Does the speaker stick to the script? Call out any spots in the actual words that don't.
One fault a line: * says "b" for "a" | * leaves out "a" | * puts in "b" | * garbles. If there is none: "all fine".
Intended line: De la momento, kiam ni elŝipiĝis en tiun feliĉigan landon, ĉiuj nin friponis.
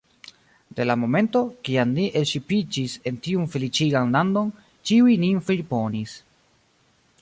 all fine